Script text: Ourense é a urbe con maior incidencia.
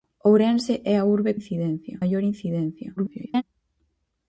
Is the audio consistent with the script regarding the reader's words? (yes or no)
no